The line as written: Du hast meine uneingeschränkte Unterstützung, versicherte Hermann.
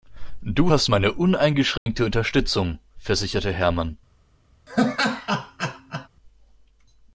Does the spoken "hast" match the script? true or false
true